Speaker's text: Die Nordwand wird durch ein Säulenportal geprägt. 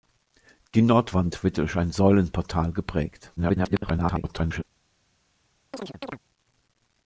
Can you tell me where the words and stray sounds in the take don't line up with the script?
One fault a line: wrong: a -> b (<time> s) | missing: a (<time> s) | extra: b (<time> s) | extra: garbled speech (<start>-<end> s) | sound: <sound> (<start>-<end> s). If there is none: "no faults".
extra: garbled speech (3.4-4.6 s)
sound: chirp (5.7-6.2 s)